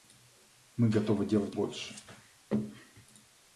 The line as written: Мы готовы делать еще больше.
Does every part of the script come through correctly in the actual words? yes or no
no